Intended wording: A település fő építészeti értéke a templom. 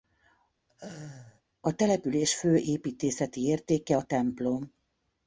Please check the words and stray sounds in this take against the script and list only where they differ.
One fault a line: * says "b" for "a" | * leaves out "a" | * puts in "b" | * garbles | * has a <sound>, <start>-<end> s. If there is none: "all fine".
* has a laugh, 0.7-1.4 s